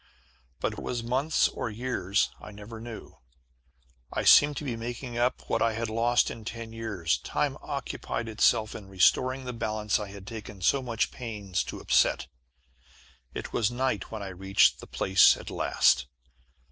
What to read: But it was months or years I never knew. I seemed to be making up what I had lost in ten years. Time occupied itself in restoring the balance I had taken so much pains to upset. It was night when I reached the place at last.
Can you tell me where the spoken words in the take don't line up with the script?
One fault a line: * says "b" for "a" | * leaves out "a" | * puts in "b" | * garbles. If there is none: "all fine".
all fine